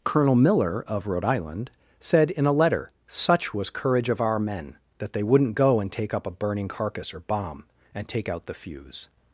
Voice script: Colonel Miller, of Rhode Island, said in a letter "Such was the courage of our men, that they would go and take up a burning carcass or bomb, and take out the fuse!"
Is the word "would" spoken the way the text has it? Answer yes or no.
no